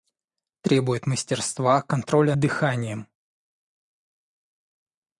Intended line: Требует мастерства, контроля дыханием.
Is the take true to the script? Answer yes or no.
yes